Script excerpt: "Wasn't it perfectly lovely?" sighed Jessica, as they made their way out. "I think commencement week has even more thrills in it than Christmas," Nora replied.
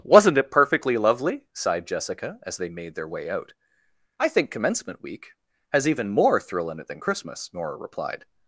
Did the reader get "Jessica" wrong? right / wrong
right